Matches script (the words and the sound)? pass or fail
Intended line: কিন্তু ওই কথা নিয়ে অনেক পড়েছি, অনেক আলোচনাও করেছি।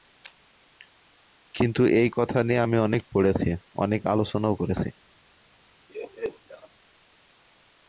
fail